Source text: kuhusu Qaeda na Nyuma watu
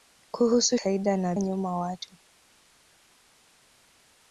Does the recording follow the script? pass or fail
pass